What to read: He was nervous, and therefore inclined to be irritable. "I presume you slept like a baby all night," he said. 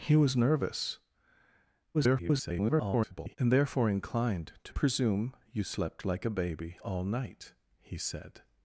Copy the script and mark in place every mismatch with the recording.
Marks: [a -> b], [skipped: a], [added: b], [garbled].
He was nervous, [garbled] and therefore inclined to [skipped: be irritable. "I] presume you slept like a baby all night," he said.